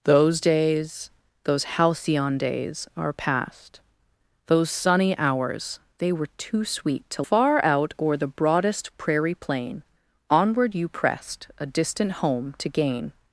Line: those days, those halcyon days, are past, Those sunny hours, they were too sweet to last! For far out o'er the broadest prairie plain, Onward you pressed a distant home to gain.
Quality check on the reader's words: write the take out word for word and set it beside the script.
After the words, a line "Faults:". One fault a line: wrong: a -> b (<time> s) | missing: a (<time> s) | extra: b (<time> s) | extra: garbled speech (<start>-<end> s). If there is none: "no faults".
those days, those halcyon days, are past, Those sunny hours, they were too sweet to far out o'er the broadest prairie plain, Onward you pressed a distant home to gain.
Faults:
missing: last For (7.2 s)